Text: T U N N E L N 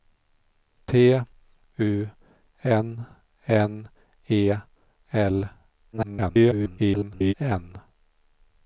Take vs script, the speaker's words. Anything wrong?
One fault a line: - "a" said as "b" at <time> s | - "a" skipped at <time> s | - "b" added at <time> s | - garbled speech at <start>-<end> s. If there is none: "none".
- garbled speech at 5.9-7.3 s